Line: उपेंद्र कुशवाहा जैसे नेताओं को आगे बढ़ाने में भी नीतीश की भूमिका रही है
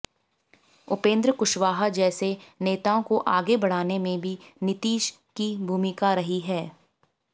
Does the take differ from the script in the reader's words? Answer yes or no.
no